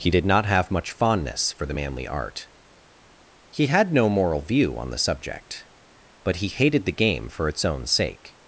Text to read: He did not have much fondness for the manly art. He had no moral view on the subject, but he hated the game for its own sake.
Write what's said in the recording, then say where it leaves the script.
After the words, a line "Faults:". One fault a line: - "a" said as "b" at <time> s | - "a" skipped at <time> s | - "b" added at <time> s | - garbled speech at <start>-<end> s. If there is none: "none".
He did not have much fondness for the manly art. He had no moral view on the subject, but he hated the game for its own sake.
Faults:
none